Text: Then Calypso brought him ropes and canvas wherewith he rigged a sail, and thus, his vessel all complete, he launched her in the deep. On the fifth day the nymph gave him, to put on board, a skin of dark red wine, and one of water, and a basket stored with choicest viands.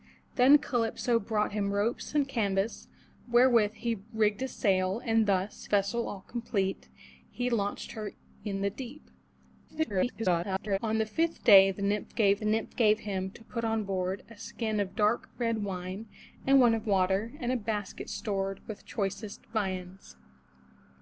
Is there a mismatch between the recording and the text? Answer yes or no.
yes